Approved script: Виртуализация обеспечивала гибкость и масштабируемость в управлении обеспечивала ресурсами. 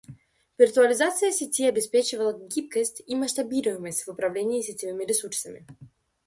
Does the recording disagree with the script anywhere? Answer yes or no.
yes